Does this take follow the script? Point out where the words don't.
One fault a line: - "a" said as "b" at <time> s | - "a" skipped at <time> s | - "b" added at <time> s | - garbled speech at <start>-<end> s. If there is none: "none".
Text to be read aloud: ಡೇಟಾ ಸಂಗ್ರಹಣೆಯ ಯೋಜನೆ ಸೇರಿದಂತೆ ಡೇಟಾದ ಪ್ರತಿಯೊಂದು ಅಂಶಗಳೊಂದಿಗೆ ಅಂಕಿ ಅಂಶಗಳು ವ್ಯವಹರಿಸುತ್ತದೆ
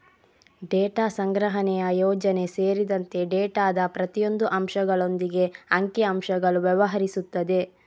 none